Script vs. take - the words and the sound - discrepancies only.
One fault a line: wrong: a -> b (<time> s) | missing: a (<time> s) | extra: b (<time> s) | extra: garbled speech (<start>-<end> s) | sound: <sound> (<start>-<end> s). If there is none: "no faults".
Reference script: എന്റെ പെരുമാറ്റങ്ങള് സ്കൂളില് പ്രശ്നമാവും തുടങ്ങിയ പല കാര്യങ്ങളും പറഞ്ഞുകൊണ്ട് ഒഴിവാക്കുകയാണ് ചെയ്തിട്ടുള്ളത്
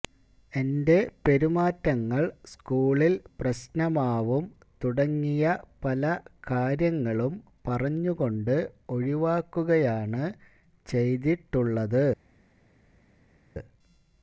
no faults